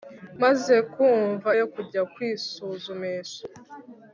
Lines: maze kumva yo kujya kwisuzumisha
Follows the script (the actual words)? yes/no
yes